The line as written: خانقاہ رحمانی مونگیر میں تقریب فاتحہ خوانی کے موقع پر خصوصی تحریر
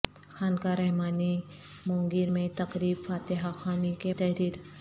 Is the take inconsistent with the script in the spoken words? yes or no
yes